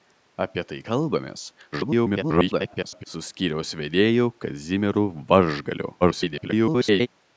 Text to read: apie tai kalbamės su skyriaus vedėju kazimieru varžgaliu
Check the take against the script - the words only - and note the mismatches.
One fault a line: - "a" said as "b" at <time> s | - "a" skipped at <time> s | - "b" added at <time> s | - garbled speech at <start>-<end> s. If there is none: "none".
- garbled speech at 1.7-3.0 s
- garbled speech at 6.0-7.1 s